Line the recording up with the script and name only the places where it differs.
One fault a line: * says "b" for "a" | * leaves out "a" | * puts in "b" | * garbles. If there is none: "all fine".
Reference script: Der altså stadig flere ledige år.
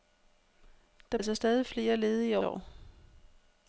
all fine